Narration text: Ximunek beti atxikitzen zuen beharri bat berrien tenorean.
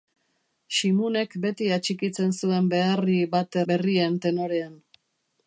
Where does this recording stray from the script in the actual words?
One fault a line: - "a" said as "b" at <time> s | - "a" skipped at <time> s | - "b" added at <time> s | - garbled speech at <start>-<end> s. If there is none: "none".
none